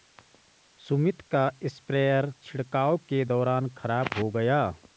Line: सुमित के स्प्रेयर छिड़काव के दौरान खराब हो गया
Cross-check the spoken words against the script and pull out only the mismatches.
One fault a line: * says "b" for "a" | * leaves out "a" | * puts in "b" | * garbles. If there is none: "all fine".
* says "का" for "के"